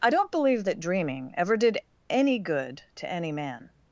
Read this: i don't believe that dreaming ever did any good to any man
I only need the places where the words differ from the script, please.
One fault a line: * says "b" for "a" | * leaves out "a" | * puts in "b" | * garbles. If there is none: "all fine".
all fine